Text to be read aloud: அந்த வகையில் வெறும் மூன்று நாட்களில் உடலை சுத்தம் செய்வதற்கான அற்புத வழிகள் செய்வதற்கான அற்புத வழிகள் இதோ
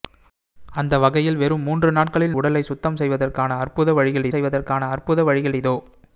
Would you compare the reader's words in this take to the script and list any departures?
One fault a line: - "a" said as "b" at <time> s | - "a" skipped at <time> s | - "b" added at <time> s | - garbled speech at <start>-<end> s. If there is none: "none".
none